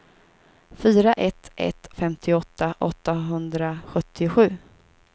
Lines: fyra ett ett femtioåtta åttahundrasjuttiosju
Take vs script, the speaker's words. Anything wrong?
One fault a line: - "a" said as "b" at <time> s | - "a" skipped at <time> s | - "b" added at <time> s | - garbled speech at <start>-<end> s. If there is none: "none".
none